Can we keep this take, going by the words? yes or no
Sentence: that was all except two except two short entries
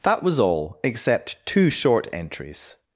no